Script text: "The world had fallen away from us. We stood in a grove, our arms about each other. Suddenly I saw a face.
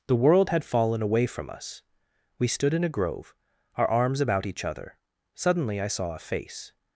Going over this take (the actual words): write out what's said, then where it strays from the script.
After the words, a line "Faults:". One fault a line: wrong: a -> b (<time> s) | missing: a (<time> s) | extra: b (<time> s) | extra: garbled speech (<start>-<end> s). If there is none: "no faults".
"The world had fallen away from us. We stood in a grove, our arms about each other. Suddenly I saw a face.
Faults:
no faults